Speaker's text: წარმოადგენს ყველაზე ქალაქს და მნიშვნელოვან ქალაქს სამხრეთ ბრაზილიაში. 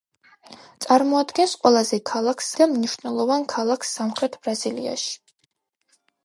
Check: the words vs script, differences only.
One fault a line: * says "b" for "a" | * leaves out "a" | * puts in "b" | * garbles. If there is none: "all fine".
all fine